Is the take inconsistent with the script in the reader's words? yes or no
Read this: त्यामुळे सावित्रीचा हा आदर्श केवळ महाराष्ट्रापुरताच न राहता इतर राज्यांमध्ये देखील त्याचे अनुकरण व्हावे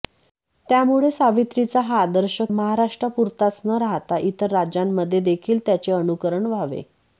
yes